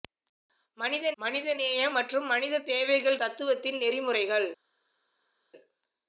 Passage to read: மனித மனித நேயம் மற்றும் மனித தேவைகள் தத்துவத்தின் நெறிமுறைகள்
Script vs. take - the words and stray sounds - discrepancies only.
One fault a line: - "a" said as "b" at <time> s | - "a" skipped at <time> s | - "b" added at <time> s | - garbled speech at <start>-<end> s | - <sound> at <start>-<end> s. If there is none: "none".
none